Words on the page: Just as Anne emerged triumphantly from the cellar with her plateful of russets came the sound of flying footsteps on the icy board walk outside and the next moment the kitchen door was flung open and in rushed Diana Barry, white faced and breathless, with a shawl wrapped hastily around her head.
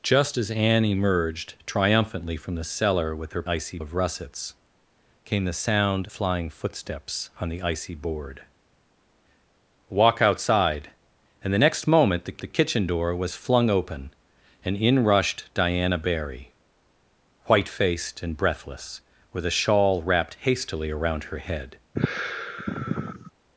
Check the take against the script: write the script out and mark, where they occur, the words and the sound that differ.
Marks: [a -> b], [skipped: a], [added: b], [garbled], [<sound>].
Just as Anne emerged triumphantly from the cellar with her [plateful -> icy] of russets came the sound [skipped: of] flying footsteps on the icy board walk outside and the next moment the [added: the] kitchen door was flung open and in rushed Diana Barry, white faced and breathless, with a shawl wrapped hastily around her head. [sigh]